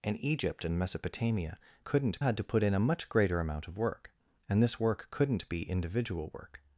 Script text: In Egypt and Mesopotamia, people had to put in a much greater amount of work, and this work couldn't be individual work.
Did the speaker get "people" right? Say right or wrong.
wrong